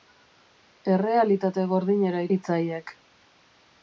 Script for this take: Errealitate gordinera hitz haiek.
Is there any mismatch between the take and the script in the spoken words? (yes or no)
no